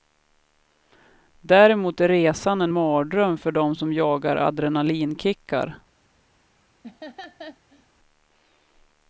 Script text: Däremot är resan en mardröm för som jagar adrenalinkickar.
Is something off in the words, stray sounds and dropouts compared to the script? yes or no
yes